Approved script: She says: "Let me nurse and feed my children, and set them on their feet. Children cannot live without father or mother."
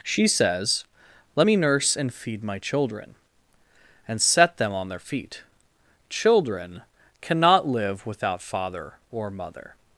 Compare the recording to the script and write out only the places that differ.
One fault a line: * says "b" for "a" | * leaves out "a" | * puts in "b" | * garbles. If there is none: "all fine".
all fine